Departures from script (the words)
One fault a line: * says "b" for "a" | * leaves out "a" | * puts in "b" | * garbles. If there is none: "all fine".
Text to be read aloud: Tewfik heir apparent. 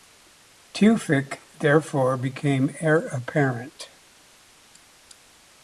* puts in "therefore became"